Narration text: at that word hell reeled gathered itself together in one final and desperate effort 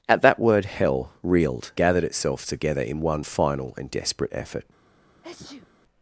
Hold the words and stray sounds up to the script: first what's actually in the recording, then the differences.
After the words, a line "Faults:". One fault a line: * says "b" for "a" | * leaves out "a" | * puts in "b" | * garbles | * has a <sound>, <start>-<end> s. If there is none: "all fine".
at that word hell reeled gathered itself together in one final and desperate effort
Faults:
* has a sneeze, 5.2-5.7 s